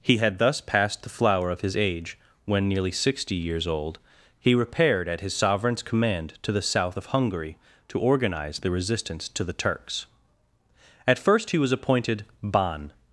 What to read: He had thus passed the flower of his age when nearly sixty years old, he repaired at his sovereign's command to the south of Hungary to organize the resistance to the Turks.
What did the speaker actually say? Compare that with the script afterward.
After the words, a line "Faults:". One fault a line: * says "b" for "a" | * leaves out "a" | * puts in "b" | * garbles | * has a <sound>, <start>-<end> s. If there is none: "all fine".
He had thus passed the flower of his age when nearly sixty years old, he repaired at his sovereign's command to the south of Hungary to organize the resistance to the Turks. At first he was appointed Ban
Faults:
* puts in "At first he was appointed Ban"